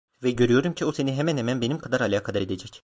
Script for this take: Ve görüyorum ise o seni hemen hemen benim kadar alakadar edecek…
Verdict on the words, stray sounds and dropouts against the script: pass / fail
fail